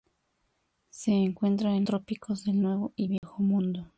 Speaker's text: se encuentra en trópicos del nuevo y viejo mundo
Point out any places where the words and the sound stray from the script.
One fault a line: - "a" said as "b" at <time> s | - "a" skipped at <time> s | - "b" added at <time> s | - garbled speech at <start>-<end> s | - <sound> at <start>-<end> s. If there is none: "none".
- dropout at 3.2-3.2 s